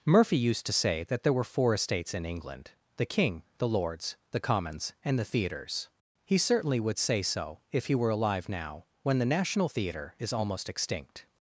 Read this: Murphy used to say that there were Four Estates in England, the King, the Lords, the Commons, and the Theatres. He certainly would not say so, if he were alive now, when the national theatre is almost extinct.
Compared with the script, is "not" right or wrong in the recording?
wrong